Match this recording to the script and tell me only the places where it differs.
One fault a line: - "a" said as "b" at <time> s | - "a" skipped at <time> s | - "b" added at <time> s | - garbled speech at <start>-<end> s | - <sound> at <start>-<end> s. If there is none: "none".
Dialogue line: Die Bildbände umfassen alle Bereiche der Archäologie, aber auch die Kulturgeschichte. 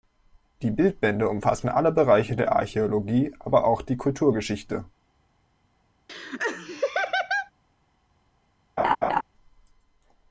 - laugh at 6.1-7.5 s
- laugh at 8.8-9.2 s